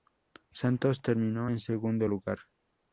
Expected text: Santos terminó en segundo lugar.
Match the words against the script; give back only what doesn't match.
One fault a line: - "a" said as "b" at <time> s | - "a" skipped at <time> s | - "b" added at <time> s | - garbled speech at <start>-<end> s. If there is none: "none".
none